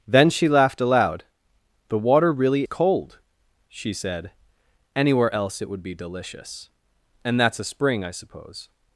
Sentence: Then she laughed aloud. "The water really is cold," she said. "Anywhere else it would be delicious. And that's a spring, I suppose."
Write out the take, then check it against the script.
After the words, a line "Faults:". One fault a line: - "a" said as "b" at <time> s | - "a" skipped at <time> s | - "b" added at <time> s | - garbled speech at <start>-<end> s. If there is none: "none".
Then she laughed aloud. "The water really cold," she said. "Anywhere else it would be delicious. And that's a spring, I suppose."
Faults:
- "is" skipped at 2.7 s